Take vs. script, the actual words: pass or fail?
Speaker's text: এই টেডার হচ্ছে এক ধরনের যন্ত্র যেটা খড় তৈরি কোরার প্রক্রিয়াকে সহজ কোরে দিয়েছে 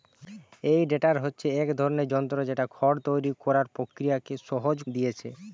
fail